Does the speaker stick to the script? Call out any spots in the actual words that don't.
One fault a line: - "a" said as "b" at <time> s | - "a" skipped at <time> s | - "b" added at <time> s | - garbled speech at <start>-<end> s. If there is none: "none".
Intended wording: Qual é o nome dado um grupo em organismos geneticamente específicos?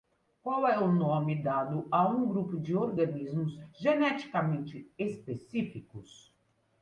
- "a" added at 1.9 s
- "em" said as "de" at 2.6 s